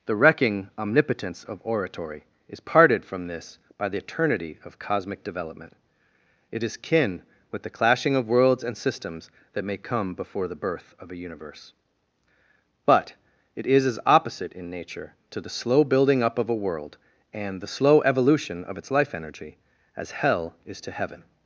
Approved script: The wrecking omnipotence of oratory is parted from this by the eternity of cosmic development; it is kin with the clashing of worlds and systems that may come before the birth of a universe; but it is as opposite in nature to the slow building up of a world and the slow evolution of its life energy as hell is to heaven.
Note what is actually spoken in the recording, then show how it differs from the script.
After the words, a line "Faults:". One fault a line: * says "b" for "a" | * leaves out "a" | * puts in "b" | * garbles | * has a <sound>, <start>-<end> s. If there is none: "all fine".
The wrecking omnipotence of oratory is parted from this by the eternity of cosmic development; it is kin with the clashing of worlds and systems that may come before the birth of a universe; but it is as opposite in nature to the slow building up of a world and the slow evolution of its life energy as hell is to heaven.
Faults:
all fine